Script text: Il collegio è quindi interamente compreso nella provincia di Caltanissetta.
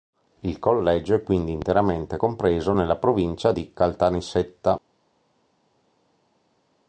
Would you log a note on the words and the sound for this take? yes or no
no